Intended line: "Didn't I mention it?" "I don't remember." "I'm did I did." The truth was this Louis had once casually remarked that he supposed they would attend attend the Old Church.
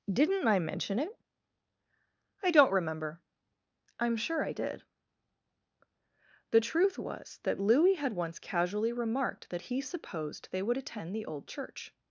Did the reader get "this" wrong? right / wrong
wrong